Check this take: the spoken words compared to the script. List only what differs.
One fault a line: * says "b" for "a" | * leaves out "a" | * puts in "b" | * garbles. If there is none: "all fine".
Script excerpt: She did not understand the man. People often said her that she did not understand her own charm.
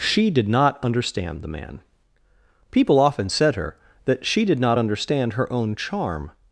all fine